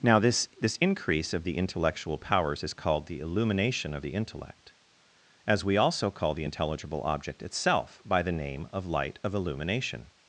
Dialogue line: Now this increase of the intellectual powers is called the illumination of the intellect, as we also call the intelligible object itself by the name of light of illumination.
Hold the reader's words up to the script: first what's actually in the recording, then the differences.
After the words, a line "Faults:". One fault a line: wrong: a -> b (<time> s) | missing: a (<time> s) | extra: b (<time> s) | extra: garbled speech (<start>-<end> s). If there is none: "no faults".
Now this this increase of the intellectual powers is called the illumination of the intellect, as we also call the intelligible object itself by the name of light of illumination.
Faults:
extra: this (0.6 s)